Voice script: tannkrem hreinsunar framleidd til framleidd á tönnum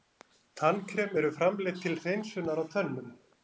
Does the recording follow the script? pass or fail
fail